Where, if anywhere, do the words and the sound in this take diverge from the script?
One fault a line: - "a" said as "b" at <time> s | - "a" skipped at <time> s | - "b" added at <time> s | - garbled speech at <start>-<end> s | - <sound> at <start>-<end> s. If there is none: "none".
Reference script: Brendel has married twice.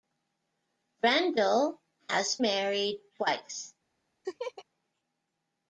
- laugh at 4.2-4.6 s